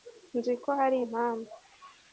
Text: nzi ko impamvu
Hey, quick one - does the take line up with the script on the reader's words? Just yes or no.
no